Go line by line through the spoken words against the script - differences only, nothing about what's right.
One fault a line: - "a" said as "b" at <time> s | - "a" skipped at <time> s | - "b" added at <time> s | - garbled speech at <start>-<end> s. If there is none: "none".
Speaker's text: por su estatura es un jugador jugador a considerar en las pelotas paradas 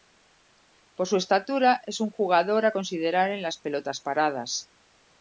- "jugador" skipped at 2.6 s